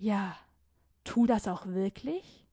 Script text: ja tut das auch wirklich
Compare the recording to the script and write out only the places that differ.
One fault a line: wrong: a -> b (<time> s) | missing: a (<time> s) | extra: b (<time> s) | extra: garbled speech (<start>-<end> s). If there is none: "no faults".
no faults